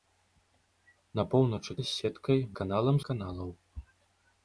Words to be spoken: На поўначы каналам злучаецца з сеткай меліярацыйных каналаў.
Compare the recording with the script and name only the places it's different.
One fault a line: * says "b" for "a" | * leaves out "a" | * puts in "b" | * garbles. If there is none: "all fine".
* leaves out "каналам злучаецца"
* says "каналам" for "меліярацыйных"